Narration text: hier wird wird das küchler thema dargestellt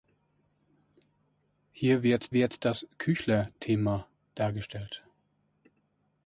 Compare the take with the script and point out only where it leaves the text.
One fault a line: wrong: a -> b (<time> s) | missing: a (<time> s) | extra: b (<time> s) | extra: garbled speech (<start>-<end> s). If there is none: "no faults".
no faults